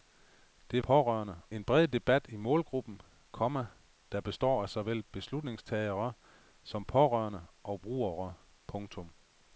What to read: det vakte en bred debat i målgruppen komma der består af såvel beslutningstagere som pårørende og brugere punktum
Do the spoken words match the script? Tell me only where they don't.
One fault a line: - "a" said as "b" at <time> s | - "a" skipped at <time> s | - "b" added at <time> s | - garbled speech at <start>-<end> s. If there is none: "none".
- "vakte" said as "pårørende" at 0.8 s